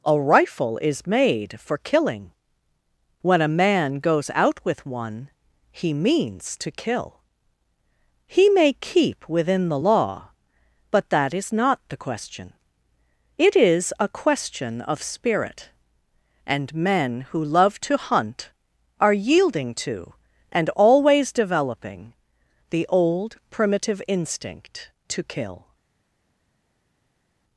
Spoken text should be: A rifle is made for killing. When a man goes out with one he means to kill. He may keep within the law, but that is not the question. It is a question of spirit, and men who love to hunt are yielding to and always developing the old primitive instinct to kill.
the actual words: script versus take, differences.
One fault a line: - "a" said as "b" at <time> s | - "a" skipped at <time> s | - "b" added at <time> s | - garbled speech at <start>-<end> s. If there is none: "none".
none